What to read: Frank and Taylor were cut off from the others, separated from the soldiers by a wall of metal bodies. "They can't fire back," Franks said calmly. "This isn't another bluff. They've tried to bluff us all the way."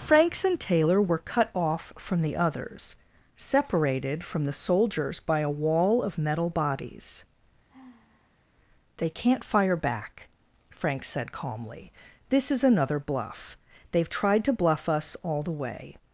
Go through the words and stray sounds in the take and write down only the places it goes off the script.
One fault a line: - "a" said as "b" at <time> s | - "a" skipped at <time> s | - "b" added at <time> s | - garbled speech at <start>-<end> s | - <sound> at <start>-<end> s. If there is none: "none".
- "Frank" said as "Franks" at 0.0 s
- sigh at 7.7-8.4 s
- "isn't" said as "is" at 12.5 s